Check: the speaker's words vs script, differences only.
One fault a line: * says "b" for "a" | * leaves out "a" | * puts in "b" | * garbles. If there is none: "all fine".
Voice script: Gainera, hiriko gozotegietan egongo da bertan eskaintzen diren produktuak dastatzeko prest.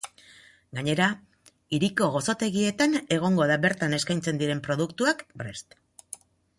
* leaves out "dastatzeko"